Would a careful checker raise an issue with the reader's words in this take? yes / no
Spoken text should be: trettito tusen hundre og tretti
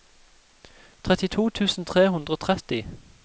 yes